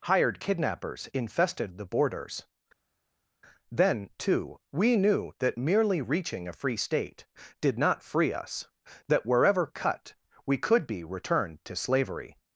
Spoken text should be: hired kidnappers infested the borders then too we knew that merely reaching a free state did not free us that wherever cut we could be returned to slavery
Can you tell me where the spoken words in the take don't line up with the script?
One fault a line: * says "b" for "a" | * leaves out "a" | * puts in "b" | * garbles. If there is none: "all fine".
all fine